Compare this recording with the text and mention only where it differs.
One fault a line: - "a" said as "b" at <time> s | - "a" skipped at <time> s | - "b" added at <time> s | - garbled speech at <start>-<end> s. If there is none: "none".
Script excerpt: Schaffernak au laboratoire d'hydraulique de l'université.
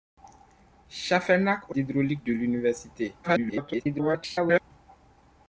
- "laboratoire" skipped at 1.8 s
- garbled speech at 3.2-4.6 s